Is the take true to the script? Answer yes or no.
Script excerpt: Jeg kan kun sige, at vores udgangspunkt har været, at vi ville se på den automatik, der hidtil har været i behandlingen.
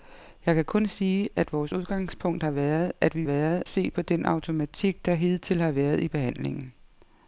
no